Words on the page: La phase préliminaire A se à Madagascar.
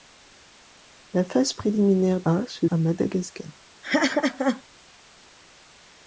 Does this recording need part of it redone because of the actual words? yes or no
no